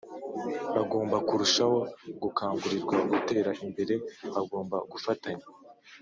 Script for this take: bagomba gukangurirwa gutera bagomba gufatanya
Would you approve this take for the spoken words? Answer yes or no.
no